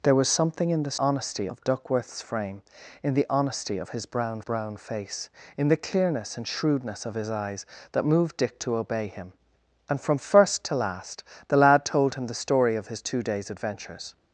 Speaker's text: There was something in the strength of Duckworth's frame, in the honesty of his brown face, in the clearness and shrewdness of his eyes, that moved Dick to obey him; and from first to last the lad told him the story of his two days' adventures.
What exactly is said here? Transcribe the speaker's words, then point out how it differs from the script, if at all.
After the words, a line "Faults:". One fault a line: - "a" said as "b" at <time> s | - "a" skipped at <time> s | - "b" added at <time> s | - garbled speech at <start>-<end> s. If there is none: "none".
There was something in the honesty of Duckworth's frame, in the honesty of his brown brown face, in the clearness and shrewdness of his eyes, that moved Dick to obey him; and from first to last the lad told him the story of his two days' adventures.
Faults:
- "strength" said as "honesty" at 1.0 s
- "brown" added at 4.4 s